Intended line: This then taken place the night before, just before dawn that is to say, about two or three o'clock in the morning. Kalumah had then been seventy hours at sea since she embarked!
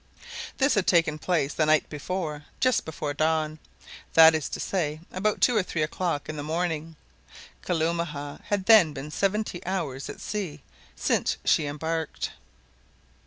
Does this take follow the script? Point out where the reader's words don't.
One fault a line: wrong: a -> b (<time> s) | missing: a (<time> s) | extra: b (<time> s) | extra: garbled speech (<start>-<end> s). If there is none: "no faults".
wrong: then -> had (0.7 s)